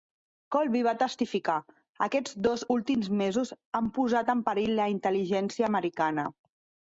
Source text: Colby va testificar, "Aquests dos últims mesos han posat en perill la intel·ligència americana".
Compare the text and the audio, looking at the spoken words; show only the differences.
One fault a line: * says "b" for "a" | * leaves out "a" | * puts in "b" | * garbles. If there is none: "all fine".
all fine